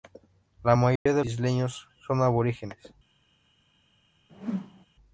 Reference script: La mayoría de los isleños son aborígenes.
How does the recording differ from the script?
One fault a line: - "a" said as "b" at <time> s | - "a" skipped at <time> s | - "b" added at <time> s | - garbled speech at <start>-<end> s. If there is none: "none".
- "los" skipped at 1.3 s